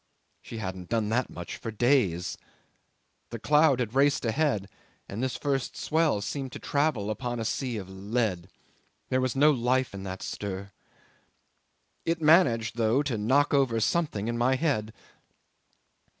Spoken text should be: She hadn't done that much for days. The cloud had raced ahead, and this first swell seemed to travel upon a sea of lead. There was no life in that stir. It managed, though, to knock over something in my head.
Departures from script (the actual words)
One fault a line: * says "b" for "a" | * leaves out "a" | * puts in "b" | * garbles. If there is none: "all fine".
all fine